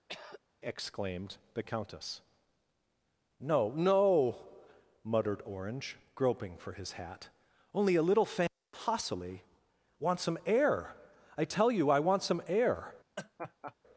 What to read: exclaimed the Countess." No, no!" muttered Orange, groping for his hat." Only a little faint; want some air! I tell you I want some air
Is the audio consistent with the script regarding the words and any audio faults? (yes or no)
no